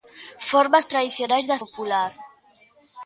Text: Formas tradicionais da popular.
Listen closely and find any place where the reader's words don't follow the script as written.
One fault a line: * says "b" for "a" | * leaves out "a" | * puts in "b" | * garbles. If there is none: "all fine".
all fine